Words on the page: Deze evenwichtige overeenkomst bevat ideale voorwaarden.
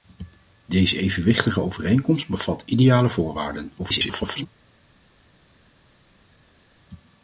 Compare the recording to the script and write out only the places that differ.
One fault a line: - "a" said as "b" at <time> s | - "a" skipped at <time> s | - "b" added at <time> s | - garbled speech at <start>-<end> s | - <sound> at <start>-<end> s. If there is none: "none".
- garbled speech at 3.8-4.5 s